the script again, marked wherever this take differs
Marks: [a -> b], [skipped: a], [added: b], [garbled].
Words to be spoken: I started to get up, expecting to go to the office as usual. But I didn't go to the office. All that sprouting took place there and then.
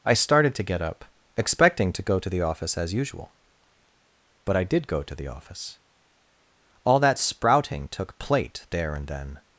I started to get up, expecting to go to the office as usual. But I [didn't -> did] go to the office. All that sprouting took [place -> plate] there and then.